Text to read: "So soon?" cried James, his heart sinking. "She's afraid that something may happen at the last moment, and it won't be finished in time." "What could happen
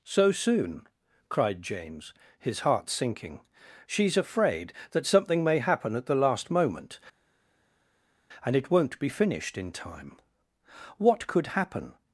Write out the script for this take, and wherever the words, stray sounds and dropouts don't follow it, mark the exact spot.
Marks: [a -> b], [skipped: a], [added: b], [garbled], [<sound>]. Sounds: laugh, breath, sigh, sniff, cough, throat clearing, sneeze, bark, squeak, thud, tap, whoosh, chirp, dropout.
"So soon?" cried James, his heart sinking. "She's afraid that something may happen at the last moment, and it won't be finished in time." "What could happen